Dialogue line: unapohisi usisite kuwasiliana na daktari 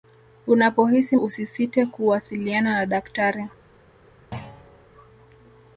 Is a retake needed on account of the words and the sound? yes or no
yes